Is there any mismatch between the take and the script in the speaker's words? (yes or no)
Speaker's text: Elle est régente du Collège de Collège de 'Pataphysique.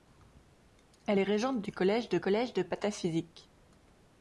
no